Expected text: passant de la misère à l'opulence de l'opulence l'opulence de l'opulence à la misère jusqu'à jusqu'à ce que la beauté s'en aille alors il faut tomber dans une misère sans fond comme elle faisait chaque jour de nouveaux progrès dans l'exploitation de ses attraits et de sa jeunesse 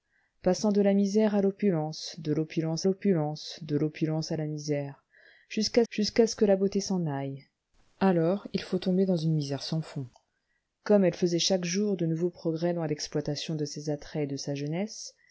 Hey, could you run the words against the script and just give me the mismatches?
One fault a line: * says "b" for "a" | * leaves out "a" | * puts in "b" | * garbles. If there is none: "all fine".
all fine